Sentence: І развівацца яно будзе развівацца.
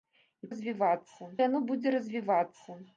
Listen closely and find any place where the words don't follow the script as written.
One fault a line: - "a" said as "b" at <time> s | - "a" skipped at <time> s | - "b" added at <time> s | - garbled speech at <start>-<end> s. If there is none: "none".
none